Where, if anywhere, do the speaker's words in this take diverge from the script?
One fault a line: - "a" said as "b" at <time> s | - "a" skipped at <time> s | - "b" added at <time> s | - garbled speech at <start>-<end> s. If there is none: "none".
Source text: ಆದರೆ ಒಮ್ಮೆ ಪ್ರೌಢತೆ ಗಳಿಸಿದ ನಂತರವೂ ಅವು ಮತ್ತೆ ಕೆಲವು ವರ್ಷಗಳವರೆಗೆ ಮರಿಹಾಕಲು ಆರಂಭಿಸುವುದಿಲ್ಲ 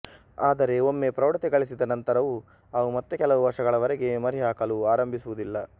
none